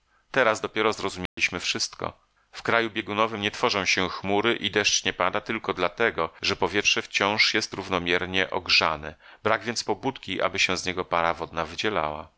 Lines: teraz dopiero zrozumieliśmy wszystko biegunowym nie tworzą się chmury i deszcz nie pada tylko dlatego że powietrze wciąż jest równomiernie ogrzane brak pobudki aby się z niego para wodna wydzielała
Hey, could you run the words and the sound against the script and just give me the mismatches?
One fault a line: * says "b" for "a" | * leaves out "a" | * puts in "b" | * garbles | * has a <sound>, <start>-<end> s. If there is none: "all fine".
* has a dropout, 1.3-1.4 s
* puts in "w kraju"
* puts in "więc"